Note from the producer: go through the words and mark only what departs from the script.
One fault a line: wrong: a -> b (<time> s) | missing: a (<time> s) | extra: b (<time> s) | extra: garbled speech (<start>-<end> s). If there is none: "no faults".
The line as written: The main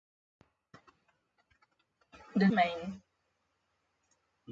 no faults